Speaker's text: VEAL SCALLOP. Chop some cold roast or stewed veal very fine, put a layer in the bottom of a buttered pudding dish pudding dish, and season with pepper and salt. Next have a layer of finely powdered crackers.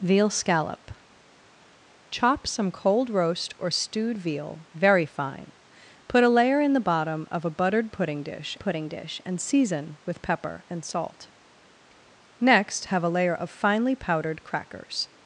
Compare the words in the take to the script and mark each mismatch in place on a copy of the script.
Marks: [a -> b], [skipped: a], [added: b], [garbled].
VEAL SCALLOP. Chop some cold roast or stewed veal very fine, put a layer in the bottom of a buttered pudding dish pudding dish, and season with pepper and salt. Next have a layer of finely powdered crackers.